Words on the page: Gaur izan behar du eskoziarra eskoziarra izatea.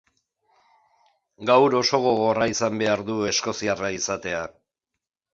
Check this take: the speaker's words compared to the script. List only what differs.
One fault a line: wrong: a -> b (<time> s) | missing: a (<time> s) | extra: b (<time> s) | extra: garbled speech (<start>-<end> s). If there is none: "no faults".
extra: oso gogorra (1.8 s)
missing: eskoziarra (3.9 s)